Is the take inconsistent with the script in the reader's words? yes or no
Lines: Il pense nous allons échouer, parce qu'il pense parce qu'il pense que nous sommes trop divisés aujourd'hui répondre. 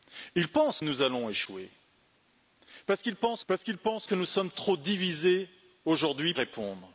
no